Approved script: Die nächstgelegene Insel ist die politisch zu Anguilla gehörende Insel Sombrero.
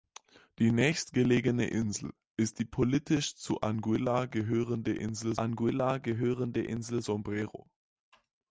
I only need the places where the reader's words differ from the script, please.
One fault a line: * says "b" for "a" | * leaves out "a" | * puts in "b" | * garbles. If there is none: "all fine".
* puts in "Anguilla gehörende Insel"